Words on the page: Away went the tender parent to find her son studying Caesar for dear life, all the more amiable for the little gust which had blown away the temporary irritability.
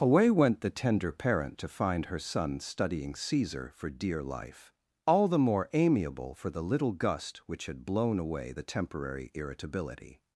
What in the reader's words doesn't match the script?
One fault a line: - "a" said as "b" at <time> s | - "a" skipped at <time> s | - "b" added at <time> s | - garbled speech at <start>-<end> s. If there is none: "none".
none